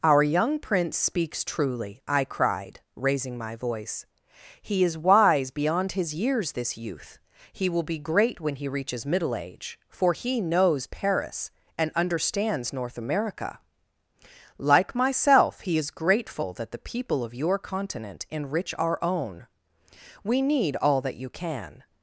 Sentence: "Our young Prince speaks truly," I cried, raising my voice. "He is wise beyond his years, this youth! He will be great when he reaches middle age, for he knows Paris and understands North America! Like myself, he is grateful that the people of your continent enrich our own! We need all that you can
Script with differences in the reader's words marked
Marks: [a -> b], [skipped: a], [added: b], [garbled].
"Our young Prince speaks truly," I cried, raising my voice. "He is wise beyond his years, this youth! He will be great when he reaches middle age, for he knows Paris and understands North America! Like myself, he is grateful that the people of your continent enrich our own! We need all that you can